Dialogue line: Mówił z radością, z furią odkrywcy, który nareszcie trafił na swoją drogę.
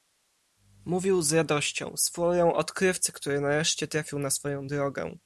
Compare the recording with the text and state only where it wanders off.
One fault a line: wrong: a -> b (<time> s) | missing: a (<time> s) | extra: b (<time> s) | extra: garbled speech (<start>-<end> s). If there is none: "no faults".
no faults